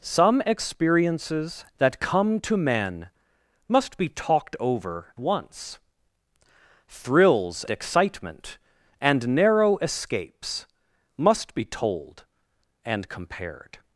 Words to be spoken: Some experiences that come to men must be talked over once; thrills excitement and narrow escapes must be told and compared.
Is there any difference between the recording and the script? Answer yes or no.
no